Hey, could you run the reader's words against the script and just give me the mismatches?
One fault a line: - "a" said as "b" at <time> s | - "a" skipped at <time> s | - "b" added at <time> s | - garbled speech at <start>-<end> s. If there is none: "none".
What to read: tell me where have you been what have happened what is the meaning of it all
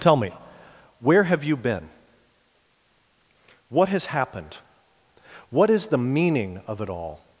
- "have" said as "has" at 3.9 s